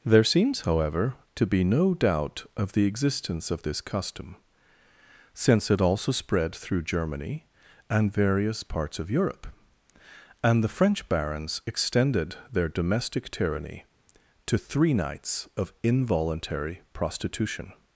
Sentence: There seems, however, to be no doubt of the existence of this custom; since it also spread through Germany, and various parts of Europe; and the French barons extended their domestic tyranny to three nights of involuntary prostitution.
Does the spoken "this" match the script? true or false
true